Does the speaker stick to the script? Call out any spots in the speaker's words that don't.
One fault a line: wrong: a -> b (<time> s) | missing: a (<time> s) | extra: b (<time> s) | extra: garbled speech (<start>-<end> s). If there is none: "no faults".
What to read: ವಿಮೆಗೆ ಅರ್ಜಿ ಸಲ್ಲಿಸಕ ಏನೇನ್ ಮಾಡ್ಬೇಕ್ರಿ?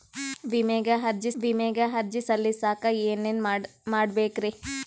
extra: ವಿಮೆಗೆ ಅರ್ಜಿ (1.4 s)